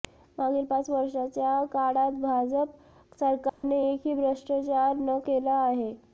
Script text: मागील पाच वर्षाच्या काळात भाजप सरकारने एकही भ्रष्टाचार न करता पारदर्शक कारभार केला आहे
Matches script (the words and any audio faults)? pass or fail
fail